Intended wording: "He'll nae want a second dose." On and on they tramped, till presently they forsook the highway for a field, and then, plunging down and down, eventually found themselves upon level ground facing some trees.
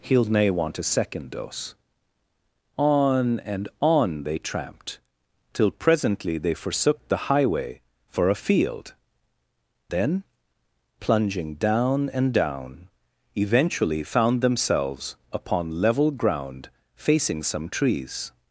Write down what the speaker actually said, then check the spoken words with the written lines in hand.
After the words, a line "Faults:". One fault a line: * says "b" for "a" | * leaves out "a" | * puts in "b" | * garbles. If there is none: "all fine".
"He'll nae want a second dose." On and on they tramped, till presently they forsook the highway for a field, then, plunging down and down, eventually found themselves upon level ground facing some trees.
Faults:
* leaves out "and"